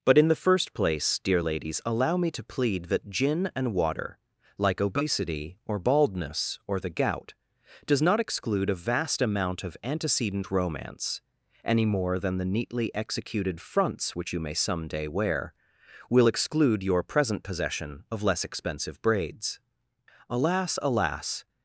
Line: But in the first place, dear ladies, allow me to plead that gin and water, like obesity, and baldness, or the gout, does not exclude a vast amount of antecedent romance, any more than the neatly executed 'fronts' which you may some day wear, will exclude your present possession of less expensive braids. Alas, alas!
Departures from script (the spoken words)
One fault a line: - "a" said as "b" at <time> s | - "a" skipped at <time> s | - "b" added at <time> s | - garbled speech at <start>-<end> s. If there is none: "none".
- "and" said as "or" at 5.6 s